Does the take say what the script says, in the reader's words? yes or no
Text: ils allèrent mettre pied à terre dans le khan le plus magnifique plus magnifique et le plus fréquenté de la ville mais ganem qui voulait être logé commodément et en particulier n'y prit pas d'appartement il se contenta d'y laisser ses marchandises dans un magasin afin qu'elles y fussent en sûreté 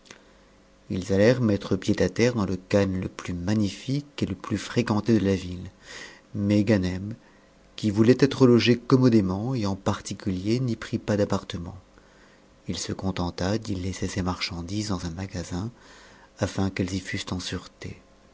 no